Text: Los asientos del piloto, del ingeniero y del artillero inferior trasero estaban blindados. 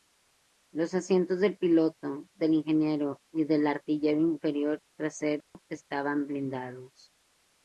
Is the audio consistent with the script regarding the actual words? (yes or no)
yes